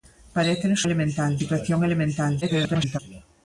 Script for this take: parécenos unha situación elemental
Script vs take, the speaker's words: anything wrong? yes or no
yes